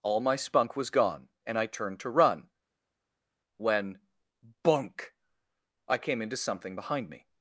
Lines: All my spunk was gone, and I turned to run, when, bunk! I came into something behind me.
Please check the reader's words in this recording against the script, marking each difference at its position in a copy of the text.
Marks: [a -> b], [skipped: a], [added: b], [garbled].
All my spunk was gone, and I turned to run, when, bunk! I came into something behind me.